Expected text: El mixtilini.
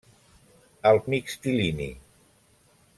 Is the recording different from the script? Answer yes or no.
no